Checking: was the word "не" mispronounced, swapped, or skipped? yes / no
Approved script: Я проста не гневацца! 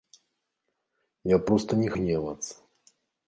no